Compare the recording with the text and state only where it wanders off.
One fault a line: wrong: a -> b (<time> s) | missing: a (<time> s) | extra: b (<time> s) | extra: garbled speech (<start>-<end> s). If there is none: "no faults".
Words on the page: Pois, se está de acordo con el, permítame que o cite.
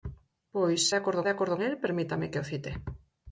wrong: está -> acordo (0.9 s)
missing: con (1.6 s)